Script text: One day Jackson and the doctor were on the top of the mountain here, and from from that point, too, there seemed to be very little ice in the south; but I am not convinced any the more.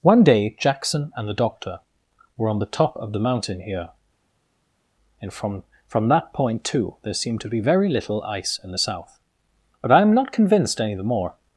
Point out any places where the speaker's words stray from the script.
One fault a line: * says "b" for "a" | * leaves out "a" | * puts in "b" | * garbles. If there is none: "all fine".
all fine